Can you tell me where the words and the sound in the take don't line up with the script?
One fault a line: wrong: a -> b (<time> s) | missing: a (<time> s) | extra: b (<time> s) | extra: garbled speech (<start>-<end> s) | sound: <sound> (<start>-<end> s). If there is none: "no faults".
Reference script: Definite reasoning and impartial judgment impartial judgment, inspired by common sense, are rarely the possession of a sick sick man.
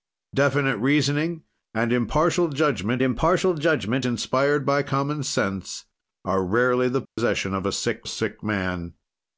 sound: dropout (7.1-7.2 s)